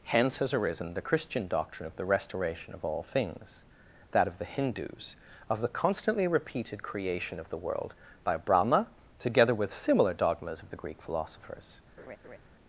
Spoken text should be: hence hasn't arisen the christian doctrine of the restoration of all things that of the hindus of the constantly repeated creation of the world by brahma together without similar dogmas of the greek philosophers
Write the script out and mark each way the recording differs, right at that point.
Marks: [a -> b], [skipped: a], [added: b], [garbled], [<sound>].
hence [hasn't -> has] arisen the christian doctrine of the restoration of all things that of the hindus of the constantly repeated creation of the world by brahma together [without -> with] similar dogmas of the greek philosophers [laugh]